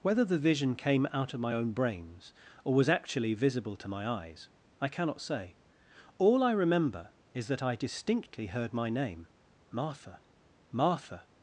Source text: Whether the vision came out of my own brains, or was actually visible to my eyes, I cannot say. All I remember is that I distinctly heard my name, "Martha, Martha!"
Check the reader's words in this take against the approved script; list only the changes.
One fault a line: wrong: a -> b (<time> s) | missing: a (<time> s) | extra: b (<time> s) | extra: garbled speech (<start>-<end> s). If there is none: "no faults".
no faults